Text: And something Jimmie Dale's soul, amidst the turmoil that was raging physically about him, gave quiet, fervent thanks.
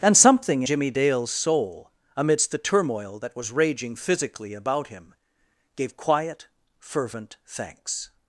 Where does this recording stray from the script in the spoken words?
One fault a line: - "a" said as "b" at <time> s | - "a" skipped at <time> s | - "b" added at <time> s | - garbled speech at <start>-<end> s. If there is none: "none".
none